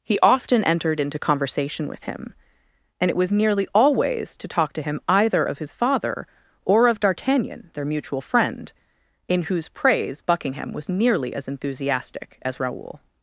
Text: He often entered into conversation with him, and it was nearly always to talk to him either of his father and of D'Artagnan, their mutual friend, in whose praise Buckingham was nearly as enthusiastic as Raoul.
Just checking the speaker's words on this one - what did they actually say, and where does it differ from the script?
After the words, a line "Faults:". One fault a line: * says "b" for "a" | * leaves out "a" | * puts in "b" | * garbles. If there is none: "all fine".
He often entered into conversation with him, and it was nearly always to talk to him either of his father or of D'Artagnan, their mutual friend, in whose praise Buckingham was nearly as enthusiastic as Raoul.
Faults:
* says "or" for "and"